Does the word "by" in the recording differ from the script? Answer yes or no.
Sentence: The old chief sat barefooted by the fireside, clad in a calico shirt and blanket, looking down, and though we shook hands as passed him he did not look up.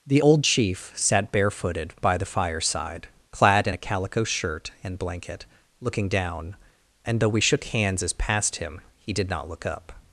no